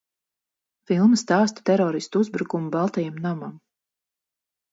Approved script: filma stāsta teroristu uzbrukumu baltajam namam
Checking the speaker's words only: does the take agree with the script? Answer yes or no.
yes